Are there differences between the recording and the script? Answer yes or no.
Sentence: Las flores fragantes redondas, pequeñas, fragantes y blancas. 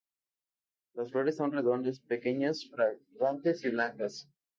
yes